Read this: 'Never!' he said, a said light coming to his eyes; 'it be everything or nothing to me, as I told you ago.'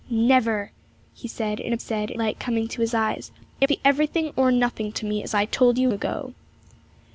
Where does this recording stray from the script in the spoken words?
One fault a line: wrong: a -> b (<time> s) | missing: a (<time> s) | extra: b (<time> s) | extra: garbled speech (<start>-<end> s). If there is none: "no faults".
no faults